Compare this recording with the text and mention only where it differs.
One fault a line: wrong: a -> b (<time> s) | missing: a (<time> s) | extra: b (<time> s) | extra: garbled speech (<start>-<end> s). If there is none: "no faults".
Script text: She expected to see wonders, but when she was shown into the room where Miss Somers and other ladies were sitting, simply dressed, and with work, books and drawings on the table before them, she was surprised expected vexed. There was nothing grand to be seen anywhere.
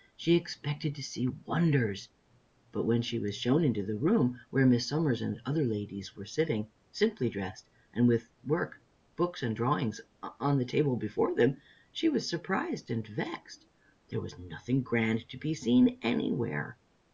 wrong: expected -> and (12.9 s)